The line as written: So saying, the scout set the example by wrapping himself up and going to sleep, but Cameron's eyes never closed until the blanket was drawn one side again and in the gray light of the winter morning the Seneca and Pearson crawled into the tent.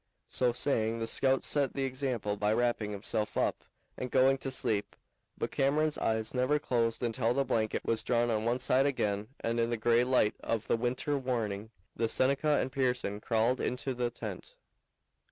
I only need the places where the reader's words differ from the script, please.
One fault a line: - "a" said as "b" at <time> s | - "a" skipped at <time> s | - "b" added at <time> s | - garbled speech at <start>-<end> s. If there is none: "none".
- "on" added at 8.3 s